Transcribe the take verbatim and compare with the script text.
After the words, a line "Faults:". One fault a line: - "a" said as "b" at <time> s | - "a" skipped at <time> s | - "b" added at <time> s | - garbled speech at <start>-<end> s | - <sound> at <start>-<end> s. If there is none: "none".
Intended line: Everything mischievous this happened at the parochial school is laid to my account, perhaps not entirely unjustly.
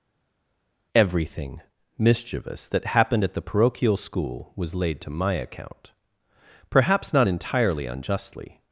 Everything mischievous that happened at the parochial school was laid to my account, perhaps not entirely unjustly.
Faults:
- "this" said as "that" at 2.7 s
- "is" said as "was" at 4.6 s